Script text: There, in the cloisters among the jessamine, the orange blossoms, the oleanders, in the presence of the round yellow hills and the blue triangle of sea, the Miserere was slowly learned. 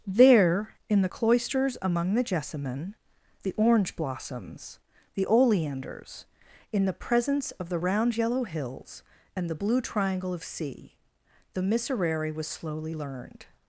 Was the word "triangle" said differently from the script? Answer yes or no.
no